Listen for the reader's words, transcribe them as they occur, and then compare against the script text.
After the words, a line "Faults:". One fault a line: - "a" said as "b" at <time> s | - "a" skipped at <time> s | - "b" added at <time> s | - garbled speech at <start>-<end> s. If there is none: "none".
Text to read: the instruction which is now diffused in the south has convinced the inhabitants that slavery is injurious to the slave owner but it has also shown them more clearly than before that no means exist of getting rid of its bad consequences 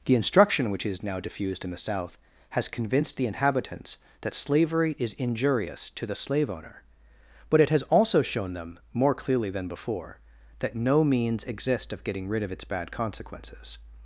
the instruction which is now diffused in the south has convinced the inhabitants that slavery is injurious to the slave owner but it has also shown them more clearly than before that no means exist of getting rid of its bad consequences
Faults:
none